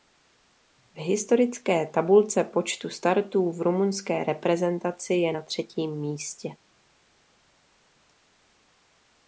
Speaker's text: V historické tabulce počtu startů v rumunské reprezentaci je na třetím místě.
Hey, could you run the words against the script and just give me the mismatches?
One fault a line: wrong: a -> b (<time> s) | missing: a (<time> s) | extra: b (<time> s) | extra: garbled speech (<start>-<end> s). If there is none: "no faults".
no faults